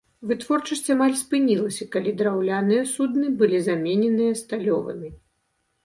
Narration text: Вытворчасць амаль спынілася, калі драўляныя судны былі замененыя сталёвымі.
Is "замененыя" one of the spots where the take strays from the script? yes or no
no